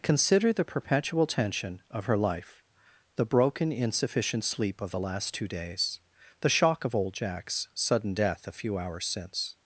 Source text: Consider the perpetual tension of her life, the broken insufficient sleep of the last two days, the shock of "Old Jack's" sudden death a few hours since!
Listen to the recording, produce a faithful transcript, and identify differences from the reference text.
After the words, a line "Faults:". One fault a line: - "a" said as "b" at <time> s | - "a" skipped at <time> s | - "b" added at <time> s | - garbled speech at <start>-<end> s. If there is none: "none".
Consider the perpetual tension of her life, the broken insufficient sleep of the last two days, the shock of "Old Jack's" sudden death a few hours since!
Faults:
none